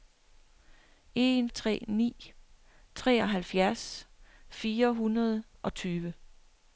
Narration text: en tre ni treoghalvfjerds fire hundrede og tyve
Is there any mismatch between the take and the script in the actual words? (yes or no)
no